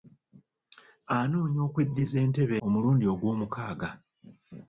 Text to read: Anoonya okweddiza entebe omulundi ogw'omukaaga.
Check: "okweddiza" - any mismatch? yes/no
no